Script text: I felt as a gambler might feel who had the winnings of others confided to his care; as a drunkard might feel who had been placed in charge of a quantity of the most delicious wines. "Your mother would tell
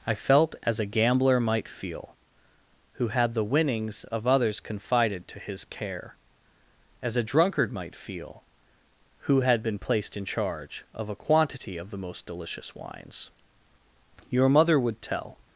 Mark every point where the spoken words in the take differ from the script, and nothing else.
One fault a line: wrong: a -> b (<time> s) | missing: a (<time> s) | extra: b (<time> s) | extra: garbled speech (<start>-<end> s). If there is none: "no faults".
no faults